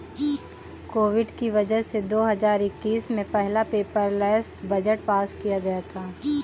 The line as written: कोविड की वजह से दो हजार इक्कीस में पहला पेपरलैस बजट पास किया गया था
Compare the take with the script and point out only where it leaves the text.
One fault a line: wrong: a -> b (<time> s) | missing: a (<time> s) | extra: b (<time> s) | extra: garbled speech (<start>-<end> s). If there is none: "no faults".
no faults